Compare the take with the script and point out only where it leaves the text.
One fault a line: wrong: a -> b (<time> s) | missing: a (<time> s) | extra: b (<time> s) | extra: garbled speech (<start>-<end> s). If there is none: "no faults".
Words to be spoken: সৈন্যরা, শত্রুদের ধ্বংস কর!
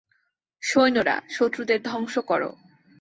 no faults